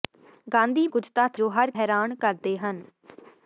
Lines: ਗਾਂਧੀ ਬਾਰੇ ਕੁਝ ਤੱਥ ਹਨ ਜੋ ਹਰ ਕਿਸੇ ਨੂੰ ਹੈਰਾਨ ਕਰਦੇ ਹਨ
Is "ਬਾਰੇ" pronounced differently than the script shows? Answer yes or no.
yes